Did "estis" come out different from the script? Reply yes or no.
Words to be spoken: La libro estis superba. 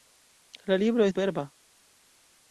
yes